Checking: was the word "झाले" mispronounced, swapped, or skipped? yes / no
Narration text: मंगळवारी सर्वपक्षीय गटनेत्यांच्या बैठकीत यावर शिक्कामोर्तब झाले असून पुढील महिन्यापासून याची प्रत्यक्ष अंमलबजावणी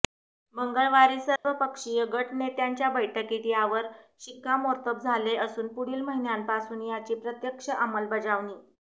no